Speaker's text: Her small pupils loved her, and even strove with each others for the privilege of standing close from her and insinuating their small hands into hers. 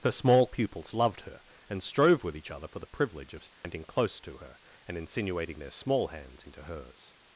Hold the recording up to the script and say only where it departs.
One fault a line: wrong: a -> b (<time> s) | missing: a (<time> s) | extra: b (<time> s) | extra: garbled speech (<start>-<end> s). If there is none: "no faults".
missing: even (1.8 s)
wrong: others -> other (2.5 s)
wrong: from -> to (4.2 s)